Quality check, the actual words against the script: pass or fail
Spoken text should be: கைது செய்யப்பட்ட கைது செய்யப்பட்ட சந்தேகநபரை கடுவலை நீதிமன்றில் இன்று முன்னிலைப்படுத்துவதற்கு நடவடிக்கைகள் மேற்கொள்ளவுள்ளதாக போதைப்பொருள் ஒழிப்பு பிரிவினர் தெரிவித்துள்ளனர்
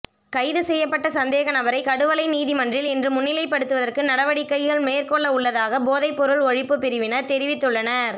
fail